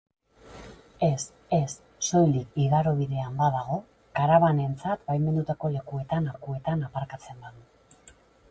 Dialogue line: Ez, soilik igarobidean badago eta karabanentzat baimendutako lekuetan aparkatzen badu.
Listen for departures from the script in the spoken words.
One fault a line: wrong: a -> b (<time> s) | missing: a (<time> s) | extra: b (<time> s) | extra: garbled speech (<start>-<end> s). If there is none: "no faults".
extra: ez (1.6 s)
missing: eta (3.8 s)
extra: lekuetan (6.3 s)